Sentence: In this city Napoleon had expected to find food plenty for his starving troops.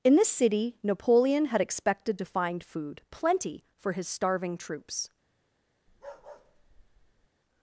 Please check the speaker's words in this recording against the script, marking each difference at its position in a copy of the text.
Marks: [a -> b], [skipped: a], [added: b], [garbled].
In this city Napoleon had expected to find food plenty for his starving troops.